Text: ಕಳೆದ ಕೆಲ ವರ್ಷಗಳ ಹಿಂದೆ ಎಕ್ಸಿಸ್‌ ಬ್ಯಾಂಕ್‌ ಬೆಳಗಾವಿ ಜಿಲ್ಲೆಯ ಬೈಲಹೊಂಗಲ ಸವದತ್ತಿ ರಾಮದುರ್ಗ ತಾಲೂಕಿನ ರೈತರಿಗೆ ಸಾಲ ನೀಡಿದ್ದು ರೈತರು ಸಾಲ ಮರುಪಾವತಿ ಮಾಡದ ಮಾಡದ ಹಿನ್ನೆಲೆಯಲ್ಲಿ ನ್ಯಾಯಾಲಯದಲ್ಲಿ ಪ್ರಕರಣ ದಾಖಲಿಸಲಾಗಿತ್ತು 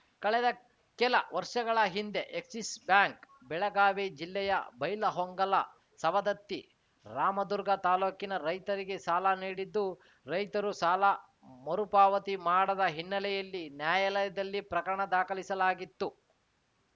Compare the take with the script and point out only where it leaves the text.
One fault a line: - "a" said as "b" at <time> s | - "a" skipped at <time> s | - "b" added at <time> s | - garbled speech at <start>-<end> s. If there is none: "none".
- "ಮಾಡದ" skipped at 12.8 s